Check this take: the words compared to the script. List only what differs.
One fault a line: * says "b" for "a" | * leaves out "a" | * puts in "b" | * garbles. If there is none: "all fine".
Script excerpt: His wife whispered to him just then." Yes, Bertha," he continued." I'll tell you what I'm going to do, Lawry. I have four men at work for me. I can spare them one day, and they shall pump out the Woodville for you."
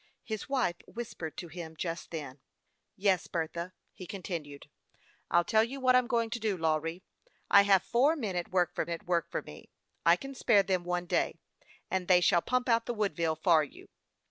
* puts in "at work for"